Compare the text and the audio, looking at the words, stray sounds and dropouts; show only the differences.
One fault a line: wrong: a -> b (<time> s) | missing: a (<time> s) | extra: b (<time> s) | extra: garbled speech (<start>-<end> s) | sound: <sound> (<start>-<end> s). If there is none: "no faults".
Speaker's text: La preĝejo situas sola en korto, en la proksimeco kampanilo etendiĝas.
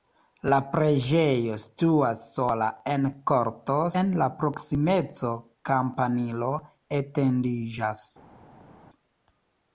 no faults